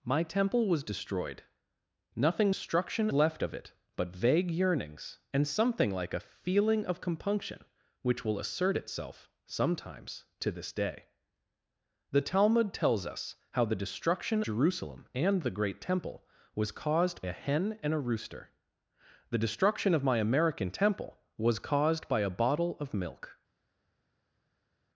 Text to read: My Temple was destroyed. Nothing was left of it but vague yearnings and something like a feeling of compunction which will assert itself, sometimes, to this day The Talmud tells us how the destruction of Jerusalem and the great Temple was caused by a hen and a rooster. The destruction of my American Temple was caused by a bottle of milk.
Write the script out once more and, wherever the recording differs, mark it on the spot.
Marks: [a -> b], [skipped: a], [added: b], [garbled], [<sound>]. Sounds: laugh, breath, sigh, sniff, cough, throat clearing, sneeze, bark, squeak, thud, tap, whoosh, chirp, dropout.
My Temple was destroyed. Nothing [was -> destruction] left of it but vague yearnings and something like a feeling of compunction which will assert itself, sometimes, to this day The Talmud tells us how the destruction [skipped: of] Jerusalem and the great Temple was caused [skipped: by] a hen and a rooster. The destruction of my American Temple was caused by a bottle of milk.